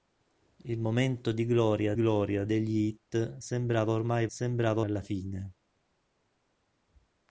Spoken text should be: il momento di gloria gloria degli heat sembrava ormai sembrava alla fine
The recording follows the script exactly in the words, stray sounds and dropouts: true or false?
true